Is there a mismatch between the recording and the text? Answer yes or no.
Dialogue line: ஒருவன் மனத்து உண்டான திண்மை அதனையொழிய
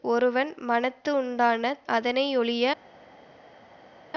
yes